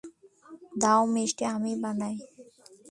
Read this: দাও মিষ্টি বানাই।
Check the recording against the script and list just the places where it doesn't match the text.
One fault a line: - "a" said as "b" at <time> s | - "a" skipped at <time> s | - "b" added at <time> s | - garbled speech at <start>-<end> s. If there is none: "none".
- "আমি" added at 1.6 s